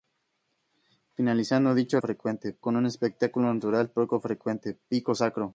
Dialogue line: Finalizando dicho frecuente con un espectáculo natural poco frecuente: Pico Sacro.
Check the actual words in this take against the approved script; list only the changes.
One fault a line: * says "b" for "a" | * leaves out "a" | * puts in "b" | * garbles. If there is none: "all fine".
all fine